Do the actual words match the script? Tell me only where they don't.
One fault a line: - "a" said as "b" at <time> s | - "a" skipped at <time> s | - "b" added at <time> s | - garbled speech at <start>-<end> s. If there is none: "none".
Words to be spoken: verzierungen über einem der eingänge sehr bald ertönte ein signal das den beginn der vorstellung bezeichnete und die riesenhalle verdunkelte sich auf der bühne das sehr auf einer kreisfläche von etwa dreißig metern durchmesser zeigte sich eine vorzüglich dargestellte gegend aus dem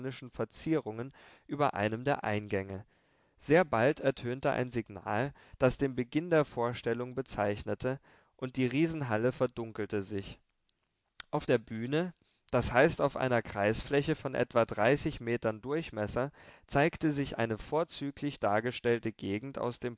- "sehr" said as "heißt" at 12.7 s